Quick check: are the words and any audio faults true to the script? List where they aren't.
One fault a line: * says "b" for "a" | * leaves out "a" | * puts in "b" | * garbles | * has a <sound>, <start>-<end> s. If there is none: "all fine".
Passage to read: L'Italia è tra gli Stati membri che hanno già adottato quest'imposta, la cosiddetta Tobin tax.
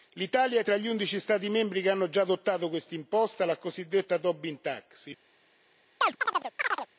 * puts in "undici"
* has a chirp, 6.0-6.9 s